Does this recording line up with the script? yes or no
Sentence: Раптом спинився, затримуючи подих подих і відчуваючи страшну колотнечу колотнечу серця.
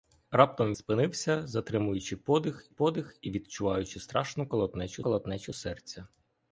yes